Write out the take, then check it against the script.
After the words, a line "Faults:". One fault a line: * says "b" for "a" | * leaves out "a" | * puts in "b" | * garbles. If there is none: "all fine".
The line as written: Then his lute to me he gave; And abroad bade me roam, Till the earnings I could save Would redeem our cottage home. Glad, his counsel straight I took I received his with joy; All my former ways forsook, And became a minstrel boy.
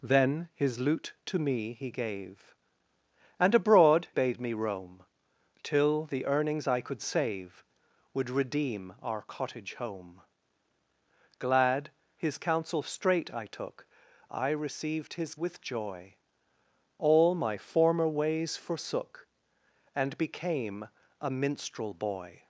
Then his lute to me he gave; And abroad bade me roam, Till the earnings I could save Would redeem our cottage home. Glad, his counsel straight I took I received his with joy; All my former ways forsook, And became a minstrel boy.
Faults:
all fine